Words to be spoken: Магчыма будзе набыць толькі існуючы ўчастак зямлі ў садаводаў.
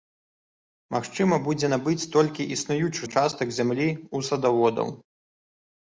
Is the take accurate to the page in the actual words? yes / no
yes